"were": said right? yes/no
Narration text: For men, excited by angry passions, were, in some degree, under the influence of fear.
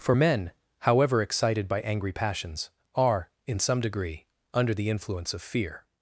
no